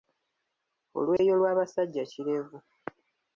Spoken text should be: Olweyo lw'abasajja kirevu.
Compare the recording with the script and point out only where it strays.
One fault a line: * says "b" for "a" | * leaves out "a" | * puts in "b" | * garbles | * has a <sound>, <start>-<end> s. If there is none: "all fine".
* has a dropout, 1.2-1.2 s